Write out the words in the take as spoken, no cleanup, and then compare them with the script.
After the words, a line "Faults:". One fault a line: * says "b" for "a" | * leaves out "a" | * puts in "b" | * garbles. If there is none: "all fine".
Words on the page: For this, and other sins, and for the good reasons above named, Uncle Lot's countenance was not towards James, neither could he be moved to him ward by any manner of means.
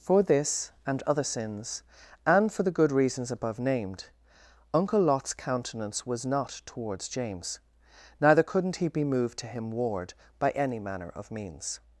For this, and other sins, and for the good reasons above named, Uncle Lot's countenance was not towards James, neither couldn't he be moved to him ward by any manner of means.
Faults:
* says "couldn't" for "could"